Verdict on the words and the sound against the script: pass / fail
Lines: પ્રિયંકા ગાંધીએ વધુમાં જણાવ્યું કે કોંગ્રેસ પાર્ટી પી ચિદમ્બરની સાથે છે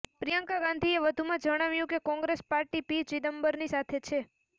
pass